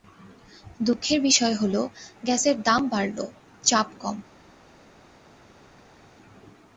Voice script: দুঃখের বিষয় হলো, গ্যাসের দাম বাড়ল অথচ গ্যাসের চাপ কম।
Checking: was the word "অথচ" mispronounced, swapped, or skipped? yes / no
yes